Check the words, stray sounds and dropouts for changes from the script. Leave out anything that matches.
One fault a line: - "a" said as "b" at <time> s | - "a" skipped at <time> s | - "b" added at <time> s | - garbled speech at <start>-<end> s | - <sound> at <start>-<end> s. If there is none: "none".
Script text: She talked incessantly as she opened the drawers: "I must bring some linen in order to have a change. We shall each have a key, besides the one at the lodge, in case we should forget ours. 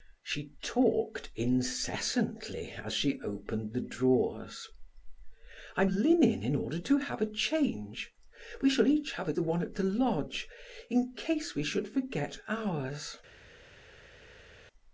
- "must bring some" skipped at 5.8 s
- "key besides" skipped at 9.3 s